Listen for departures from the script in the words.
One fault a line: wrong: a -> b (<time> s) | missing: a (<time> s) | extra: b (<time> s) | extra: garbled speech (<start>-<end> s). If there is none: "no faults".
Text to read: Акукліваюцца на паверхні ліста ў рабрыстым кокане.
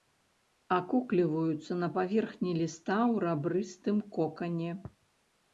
no faults